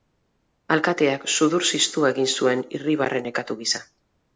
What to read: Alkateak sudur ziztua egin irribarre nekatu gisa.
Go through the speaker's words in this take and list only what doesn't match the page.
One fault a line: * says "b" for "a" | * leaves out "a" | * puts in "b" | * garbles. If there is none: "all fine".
* puts in "zuen"